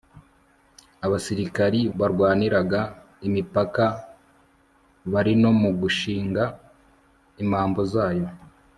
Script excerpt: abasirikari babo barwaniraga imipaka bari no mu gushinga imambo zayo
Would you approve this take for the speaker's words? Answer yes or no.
no